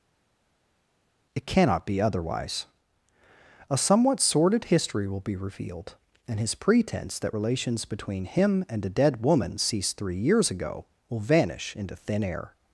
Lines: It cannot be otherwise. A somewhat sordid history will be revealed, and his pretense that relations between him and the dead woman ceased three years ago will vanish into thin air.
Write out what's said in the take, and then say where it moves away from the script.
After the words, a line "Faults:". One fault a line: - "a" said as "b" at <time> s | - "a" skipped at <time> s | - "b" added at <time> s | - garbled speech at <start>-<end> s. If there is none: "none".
It cannot be otherwise. A somewhat sordid history will be revealed, and his pretense that relations between him and a dead woman ceased three years ago will vanish into thin air.
Faults:
- "the" said as "a" at 8.8 s